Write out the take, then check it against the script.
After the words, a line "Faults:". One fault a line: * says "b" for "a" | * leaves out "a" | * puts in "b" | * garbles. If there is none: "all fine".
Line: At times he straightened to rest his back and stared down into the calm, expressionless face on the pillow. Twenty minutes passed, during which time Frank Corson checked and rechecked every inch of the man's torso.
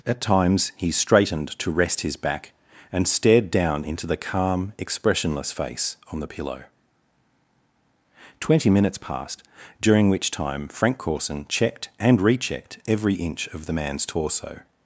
At times he straightened to rest his back and stared down into the calm, expressionless face on the pillow. Twenty minutes passed, during which time Frank Corson checked and rechecked every inch of the man's torso.
Faults:
all fine